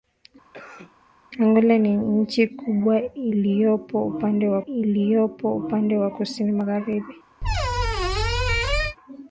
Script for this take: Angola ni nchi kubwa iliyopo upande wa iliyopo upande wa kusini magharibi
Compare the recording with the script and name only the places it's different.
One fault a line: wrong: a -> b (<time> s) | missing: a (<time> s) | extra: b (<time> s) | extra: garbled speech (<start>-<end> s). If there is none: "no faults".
no faults